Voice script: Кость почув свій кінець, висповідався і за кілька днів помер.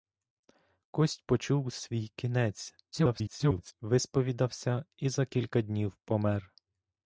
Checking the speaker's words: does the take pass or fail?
fail